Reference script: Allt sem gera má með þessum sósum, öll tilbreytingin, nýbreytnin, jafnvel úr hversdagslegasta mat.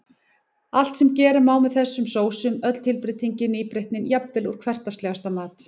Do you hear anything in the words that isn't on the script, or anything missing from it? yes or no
no